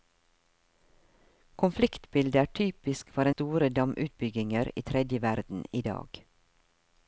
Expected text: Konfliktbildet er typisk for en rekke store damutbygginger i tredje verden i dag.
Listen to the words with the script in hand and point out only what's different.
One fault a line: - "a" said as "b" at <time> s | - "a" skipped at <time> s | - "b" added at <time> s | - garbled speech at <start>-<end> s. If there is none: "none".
- "en rekke" skipped at 3.3 s